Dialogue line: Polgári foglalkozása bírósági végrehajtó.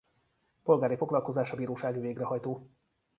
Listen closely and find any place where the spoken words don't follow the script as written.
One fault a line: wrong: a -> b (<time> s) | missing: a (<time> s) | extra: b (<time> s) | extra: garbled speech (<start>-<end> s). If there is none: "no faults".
no faults